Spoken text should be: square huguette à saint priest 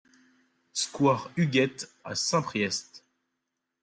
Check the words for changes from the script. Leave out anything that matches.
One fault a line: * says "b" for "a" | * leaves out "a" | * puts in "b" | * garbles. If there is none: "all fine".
all fine